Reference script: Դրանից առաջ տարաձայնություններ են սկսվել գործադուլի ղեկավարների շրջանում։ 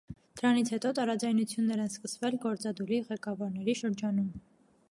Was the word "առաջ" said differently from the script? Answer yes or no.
yes